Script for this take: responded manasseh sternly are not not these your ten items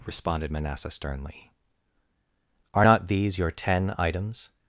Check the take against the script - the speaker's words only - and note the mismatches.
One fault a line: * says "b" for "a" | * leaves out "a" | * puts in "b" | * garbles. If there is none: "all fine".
* leaves out "not"